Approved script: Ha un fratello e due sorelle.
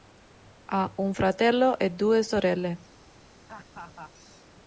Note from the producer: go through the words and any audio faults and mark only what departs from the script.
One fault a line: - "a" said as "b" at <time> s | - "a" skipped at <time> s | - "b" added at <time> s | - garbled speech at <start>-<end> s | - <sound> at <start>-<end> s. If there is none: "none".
- laugh at 3.5-4.1 s